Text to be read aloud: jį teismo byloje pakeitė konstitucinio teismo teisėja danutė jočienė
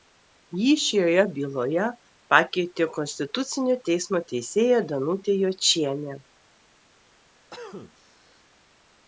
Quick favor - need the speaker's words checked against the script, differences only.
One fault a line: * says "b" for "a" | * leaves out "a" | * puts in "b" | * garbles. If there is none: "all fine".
* says "šioje" for "teismo"